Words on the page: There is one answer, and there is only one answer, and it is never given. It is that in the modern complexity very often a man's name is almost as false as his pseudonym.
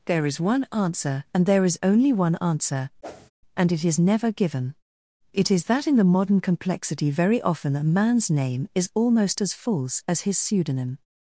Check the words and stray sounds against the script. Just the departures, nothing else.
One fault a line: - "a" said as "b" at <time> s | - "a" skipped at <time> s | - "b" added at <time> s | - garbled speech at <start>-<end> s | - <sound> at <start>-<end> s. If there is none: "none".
- whoosh at 3.0-3.3 s